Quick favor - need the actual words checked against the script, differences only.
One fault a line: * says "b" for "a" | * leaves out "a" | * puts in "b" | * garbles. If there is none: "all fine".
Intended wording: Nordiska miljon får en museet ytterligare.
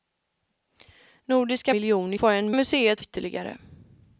all fine